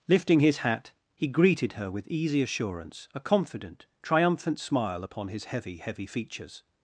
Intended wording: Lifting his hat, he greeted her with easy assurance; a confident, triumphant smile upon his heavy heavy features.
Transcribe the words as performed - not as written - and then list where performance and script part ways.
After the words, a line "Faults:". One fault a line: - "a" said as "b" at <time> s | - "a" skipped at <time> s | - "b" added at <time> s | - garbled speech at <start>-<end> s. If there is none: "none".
Lifting his hat, he greeted her with easy assurance; a confident, triumphant smile upon his heavy heavy features.
Faults:
none